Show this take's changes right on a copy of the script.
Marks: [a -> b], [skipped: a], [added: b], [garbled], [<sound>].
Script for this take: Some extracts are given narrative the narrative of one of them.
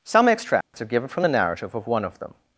Some extracts [dropout] are given [narrative -> from] the narrative of one of them.